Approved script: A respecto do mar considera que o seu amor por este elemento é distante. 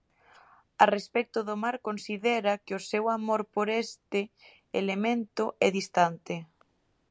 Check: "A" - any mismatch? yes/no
no